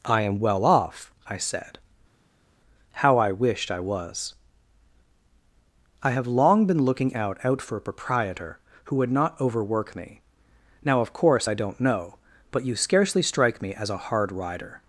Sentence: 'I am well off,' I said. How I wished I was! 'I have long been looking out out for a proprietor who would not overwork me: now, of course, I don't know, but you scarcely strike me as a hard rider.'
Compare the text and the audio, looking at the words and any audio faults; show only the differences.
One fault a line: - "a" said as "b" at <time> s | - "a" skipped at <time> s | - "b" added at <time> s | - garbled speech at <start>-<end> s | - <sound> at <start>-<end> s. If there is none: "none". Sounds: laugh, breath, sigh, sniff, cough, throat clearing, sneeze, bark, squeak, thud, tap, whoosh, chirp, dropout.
none